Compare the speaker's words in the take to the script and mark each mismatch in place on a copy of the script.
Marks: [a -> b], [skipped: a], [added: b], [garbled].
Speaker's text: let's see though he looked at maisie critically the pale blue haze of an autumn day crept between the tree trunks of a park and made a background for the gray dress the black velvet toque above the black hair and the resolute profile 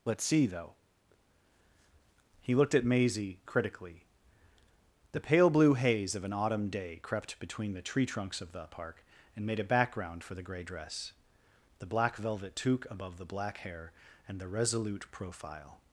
let's see though he looked at maisie critically the pale blue haze of an autumn day crept between the tree trunks of [a -> the] park and made a background for the gray dress the black velvet toque above the black hair and the resolute profile